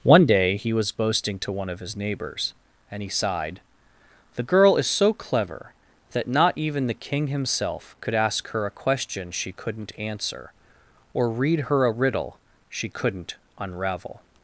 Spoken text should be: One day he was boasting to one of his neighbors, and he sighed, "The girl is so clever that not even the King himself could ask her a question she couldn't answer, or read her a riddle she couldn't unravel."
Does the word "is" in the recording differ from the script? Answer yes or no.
no